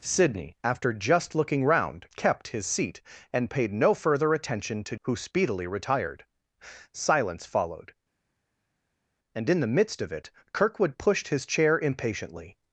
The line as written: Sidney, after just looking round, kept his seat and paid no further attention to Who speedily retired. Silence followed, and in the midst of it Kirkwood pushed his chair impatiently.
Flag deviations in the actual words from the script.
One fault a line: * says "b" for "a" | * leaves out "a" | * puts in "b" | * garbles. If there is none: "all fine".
all fine